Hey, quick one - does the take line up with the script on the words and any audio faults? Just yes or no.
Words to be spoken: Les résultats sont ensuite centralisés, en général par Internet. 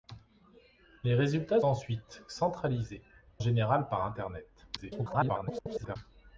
no